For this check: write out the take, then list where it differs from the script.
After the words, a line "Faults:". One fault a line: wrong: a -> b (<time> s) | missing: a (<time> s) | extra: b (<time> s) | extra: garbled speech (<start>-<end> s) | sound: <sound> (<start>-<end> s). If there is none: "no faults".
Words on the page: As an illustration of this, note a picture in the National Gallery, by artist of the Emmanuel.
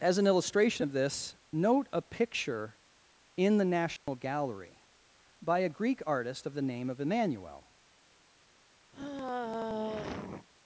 As an illustration of this, note a picture in the National Gallery, by a Greek artist of the name of Emmanuel.
Faults:
sound: dropout (4.0-4.1 s)
extra: a Greek (5.6 s)
extra: name of (6.6 s)
sound: sigh (8.9-10.5 s)